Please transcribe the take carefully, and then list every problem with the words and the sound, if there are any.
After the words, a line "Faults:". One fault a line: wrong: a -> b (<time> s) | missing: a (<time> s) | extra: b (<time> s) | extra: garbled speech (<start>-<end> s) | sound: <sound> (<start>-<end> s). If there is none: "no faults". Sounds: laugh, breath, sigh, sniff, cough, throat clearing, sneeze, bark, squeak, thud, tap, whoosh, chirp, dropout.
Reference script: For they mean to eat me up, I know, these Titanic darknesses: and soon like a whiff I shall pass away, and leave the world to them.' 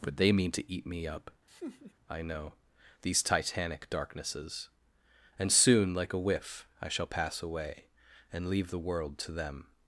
But they mean to eat me up, I know, these Titanic darknesses: and soon like a whiff I shall pass away, and leave the world to them.'
Faults:
wrong: For -> But (0.0 s)
sound: laugh (1.5-1.9 s)